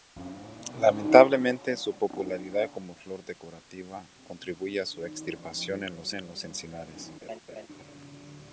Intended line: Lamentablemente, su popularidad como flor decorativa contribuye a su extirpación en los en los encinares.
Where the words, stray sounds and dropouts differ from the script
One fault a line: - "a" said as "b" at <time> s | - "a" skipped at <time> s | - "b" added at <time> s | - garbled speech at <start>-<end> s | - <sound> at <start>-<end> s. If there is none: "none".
- laugh at 7.2-7.7 s